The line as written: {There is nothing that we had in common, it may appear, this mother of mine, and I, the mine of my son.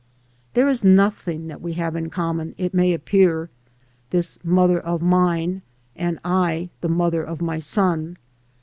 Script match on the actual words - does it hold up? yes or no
no